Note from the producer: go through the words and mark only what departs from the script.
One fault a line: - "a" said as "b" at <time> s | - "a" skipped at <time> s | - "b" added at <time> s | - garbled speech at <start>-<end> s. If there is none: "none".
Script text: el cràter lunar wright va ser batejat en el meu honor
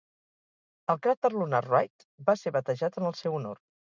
- "meu" said as "seu" at 3.2 s